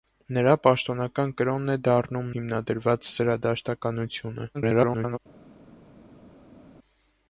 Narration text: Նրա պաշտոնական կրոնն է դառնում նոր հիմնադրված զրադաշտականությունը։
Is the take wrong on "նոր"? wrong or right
wrong